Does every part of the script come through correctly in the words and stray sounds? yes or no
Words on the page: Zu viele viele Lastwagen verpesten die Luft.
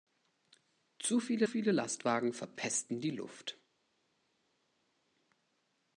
yes